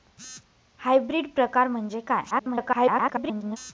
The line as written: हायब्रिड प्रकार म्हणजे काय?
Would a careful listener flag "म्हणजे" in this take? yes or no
no